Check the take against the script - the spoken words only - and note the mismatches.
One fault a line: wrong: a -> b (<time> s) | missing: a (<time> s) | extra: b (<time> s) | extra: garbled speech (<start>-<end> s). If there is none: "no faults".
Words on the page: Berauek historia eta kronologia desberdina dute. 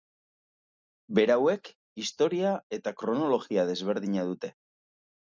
no faults